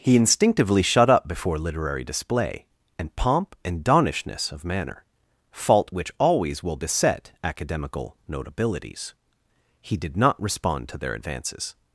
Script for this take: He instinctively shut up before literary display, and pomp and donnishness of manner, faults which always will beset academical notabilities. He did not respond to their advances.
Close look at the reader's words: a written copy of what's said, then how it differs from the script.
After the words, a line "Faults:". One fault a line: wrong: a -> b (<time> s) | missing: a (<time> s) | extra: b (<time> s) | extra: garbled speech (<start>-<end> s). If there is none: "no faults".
He instinctively shut up before literary display, and pomp and donnishness of manner, fault which always will beset academical notabilities. He did not respond to their advances.
Faults:
wrong: faults -> fault (5.5 s)